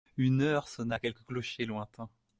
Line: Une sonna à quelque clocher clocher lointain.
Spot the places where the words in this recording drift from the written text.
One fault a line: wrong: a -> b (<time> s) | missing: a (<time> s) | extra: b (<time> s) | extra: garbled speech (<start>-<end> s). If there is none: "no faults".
extra: heure (0.4 s)
missing: clocher (1.6 s)